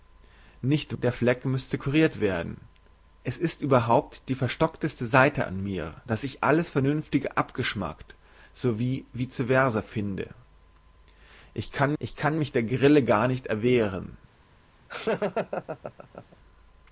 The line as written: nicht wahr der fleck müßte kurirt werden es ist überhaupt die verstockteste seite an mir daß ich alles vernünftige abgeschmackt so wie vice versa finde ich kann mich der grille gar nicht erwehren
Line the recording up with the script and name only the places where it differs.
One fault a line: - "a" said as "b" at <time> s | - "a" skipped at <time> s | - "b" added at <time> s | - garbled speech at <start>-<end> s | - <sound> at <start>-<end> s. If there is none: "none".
- "wahr" skipped at 1.0 s
- "ich kann" added at 12.0 s
- laugh at 14.9-16.4 s